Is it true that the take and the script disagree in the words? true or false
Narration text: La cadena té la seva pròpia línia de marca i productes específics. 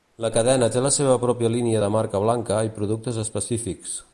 true